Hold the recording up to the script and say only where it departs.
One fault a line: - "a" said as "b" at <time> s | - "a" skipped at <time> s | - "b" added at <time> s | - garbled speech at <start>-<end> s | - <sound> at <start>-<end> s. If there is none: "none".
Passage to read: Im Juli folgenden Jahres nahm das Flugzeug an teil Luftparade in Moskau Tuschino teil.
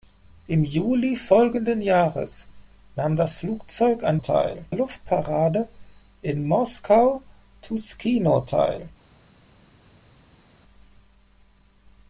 none